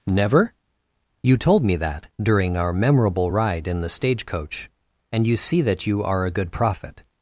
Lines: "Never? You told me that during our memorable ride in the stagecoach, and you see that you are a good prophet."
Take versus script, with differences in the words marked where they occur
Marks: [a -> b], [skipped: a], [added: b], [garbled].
"Never? You told me that during our memorable ride in the stagecoach, and you see that you are a good prophet."